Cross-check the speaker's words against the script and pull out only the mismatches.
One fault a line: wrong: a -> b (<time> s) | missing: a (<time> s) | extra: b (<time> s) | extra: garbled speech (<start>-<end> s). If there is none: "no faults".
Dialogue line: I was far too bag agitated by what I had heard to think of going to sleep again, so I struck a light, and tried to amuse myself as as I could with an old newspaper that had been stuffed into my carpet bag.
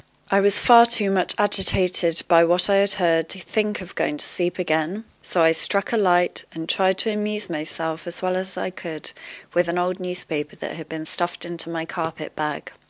wrong: bag -> much (1.1 s)
extra: well (8.2 s)